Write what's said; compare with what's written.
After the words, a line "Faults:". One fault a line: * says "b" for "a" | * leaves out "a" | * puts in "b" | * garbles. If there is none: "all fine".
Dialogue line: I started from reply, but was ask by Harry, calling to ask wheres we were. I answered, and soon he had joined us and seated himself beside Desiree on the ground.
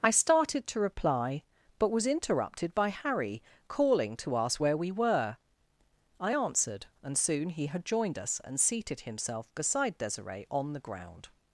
I started to reply, but was interrupted by Harry, calling to ask where we were. I answered, and soon he had joined us and seated himself beside Desiree on the ground.
Faults:
* says "to" for "from"
* says "interrupted" for "ask"
* says "where" for "wheres"